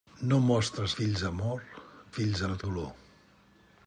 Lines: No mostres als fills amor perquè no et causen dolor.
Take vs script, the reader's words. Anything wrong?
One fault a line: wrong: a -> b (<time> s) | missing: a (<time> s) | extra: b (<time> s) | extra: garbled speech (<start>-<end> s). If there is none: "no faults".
missing: als (0.9 s)
wrong: perquè -> fills (2.1 s)
missing: causen (2.7 s)